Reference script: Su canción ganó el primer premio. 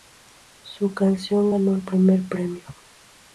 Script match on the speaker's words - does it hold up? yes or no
yes